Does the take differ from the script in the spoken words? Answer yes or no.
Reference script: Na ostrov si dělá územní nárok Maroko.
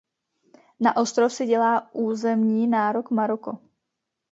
no